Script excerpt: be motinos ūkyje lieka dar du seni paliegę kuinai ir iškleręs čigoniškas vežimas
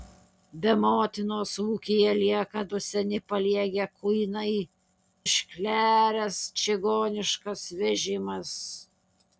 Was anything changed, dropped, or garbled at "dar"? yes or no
yes